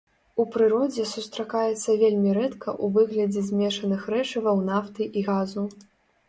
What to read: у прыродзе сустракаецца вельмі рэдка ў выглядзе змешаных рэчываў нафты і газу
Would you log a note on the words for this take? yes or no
no